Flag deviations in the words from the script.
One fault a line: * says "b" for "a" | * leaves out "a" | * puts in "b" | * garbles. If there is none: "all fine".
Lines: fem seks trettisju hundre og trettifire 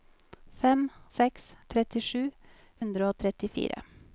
all fine